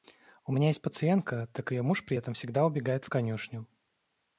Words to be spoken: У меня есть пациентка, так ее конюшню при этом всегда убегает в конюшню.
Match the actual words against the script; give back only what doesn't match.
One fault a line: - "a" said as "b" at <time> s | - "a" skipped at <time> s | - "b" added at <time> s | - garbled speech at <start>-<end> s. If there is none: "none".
- "конюшню" said as "муж" at 1.8 s